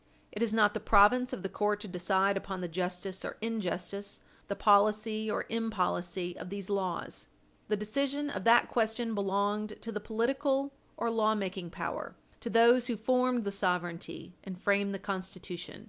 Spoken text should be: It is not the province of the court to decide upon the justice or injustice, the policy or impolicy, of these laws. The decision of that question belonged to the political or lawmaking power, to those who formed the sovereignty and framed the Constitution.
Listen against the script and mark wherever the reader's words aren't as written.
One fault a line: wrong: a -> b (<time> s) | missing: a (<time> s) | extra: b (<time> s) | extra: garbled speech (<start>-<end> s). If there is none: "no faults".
no faults